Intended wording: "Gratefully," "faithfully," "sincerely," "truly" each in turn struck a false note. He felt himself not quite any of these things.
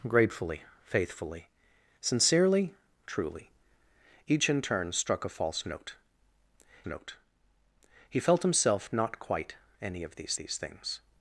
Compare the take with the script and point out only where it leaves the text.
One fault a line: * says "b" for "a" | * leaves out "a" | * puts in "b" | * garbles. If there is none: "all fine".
* puts in "note"
* puts in "these"